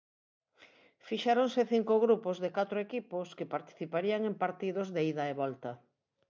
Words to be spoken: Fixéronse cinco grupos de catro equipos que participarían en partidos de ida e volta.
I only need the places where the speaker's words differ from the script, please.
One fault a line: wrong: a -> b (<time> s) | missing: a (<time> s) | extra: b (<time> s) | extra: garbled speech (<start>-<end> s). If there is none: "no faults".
no faults